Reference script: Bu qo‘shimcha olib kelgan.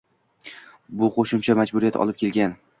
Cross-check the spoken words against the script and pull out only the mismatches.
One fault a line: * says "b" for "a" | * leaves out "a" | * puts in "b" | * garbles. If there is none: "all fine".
* puts in "majburiyat"